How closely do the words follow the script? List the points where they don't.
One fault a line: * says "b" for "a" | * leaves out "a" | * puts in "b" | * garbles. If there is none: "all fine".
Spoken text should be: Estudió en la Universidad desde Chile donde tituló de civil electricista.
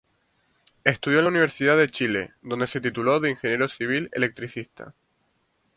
* says "de" for "desde"
* puts in "se"
* puts in "ingeniero"